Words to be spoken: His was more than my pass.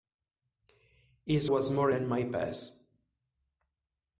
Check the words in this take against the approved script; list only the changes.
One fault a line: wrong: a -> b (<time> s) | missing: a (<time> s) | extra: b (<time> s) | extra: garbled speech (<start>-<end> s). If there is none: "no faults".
no faults